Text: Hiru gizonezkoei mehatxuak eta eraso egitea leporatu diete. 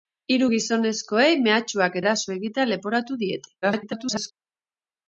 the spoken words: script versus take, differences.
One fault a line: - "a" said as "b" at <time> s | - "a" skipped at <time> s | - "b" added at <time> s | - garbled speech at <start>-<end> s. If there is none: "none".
- "eta" skipped at 2.0 s
- garbled speech at 3.6-4.3 s